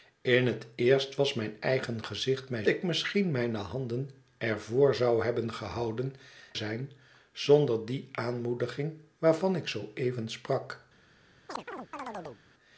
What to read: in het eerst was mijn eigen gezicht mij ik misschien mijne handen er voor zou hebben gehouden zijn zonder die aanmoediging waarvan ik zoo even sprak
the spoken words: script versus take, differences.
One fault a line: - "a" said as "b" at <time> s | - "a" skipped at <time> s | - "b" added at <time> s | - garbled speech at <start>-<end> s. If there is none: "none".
none